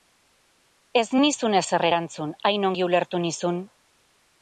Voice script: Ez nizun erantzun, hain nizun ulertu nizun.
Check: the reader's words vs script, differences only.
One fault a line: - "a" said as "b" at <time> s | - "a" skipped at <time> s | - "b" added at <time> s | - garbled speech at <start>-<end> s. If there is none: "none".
- "ezer" added at 1.6 s
- "nizun" said as "ongi" at 2.7 s